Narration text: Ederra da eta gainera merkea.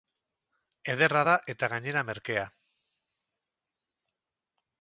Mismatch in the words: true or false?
false